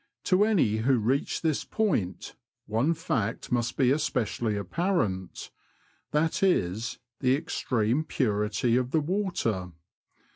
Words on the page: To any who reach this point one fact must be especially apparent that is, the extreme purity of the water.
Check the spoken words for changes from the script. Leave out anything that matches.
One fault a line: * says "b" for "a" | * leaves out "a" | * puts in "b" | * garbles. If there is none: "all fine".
all fine